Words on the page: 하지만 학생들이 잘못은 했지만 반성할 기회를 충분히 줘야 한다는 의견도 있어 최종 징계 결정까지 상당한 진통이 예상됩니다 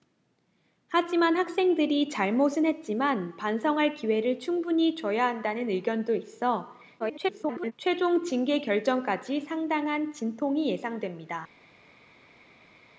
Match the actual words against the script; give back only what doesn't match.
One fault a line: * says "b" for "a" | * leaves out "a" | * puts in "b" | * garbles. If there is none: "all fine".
* garbles